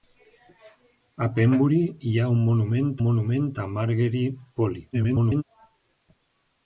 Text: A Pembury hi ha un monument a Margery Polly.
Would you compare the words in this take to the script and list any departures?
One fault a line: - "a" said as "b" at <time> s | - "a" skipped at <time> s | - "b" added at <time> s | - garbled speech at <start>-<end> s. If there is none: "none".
- "monument" added at 3.1 s
- garbled speech at 4.9-5.4 s